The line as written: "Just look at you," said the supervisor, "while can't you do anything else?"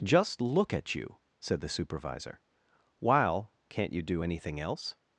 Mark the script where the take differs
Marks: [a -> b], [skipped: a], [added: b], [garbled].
"Just look at you," said the supervisor, "while can't you do anything else?"